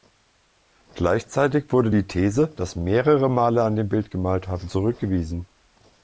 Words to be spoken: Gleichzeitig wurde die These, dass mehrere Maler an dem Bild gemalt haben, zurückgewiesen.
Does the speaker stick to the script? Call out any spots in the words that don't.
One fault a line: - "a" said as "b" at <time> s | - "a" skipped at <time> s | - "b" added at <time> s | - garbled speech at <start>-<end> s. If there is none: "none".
none